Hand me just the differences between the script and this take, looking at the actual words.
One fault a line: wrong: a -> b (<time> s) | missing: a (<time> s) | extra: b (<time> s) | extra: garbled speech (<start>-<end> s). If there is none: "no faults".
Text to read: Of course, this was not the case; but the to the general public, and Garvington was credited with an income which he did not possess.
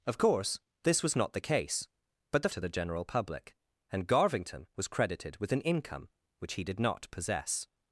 no faults